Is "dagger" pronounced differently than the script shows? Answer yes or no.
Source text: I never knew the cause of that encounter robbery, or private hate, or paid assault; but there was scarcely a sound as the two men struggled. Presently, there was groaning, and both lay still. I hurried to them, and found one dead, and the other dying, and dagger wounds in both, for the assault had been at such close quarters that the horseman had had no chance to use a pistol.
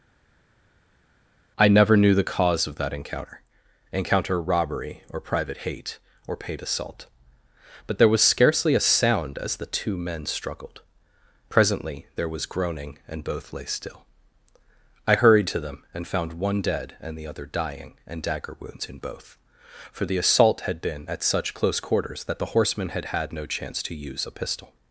no